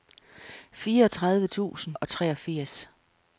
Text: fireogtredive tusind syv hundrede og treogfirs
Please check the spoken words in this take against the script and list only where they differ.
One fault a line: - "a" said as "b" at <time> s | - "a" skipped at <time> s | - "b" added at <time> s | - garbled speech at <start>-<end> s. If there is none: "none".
- "syv hundrede" skipped at 2.0 s